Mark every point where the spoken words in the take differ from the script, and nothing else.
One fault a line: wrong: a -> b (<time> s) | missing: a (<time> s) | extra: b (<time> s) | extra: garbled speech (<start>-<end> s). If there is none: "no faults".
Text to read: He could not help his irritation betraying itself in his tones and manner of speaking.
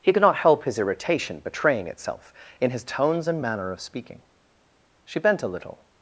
extra: She bent a little (5.0 s)